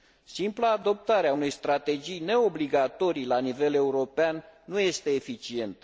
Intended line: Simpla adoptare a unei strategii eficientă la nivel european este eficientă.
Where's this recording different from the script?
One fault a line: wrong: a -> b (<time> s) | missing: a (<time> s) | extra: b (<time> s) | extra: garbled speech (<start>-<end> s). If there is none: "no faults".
wrong: eficientă -> neobligatorii (2.2 s)
extra: nu (4.6 s)